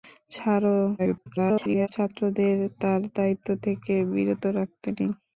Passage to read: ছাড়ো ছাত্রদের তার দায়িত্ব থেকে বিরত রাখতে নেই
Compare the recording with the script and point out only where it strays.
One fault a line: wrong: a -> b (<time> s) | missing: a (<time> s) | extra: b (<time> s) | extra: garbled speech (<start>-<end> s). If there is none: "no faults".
extra: garbled speech (1.0-1.9 s)